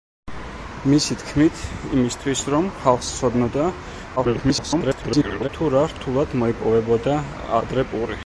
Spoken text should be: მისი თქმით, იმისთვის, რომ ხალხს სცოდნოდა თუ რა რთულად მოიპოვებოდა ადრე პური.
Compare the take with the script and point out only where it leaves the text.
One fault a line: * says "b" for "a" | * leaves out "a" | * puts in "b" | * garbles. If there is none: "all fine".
* garbles